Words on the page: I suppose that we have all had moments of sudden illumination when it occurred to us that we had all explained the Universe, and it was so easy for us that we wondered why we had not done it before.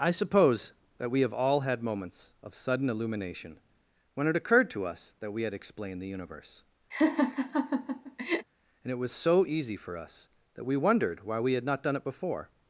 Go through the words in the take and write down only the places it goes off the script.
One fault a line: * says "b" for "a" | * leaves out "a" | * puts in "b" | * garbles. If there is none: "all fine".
* leaves out "all"